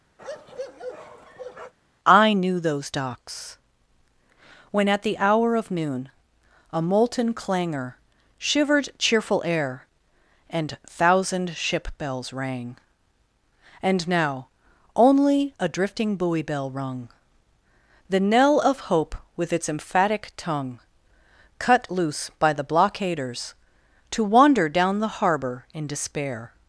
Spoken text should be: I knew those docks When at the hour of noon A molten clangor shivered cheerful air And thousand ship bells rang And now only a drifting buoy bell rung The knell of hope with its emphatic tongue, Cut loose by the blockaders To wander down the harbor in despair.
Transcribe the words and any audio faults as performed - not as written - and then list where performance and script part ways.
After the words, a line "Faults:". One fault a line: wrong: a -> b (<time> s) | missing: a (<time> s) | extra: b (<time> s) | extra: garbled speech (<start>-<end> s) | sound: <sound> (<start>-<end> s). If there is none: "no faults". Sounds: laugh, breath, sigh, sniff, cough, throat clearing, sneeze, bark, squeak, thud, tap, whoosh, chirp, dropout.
I knew those docks When at the hour of noon A molten clangor shivered cheerful air And thousand ship bells rang And now only a drifting buoy bell rung The knell of hope with its emphatic tongue, Cut loose by the blockaders To wander down the harbor in despair.
Faults:
sound: bark (0.2-1.7 s)